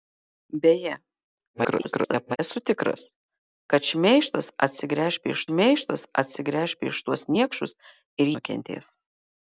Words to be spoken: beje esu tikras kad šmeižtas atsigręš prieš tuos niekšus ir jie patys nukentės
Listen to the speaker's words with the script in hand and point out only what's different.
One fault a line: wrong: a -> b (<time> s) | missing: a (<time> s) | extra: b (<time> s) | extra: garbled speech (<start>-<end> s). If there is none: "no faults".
extra: garbled speech (1.5-2.4 s)
extra: šmeižtas atsigręš prieš (5.5 s)
missing: jie patys (8.4 s)